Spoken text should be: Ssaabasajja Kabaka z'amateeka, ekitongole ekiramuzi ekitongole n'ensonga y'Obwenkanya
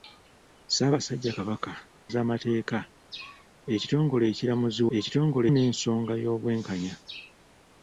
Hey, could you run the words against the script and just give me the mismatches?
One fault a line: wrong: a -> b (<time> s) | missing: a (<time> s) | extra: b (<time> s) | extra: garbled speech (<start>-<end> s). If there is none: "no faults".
no faults